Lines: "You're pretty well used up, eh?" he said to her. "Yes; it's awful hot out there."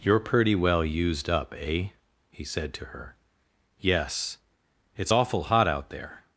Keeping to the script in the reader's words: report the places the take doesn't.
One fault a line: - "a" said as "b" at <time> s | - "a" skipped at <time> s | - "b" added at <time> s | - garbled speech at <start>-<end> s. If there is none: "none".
none